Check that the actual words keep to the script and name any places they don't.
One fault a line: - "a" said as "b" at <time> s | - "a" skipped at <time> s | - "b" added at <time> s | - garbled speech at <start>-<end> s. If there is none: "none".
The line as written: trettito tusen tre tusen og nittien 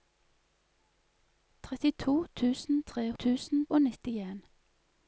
none